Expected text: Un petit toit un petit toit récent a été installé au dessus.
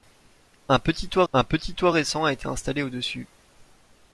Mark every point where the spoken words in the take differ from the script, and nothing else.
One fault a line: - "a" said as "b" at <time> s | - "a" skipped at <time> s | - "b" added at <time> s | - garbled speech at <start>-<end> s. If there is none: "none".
none